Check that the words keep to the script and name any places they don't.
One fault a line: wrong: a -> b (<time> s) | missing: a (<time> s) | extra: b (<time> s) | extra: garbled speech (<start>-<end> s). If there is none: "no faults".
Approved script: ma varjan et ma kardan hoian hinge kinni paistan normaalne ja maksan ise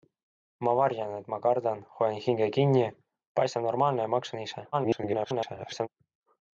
extra: garbled speech (4.7-5.9 s)